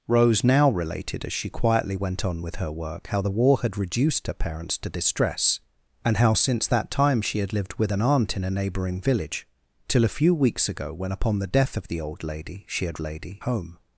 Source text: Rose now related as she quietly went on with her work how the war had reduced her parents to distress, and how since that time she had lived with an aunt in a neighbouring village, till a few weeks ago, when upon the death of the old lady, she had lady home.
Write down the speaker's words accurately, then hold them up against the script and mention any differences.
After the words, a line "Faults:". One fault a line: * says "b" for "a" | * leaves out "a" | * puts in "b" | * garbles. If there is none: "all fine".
Rose now related as she quietly went on with her work how the war had reduced her parents to distress, and how since that time she had lived with an aunt in a neighbouring village, till a few weeks ago, when upon the death of the old lady, she had lady home.
Faults:
all fine